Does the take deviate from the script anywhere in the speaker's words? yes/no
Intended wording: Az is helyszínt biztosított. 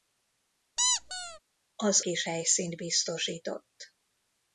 no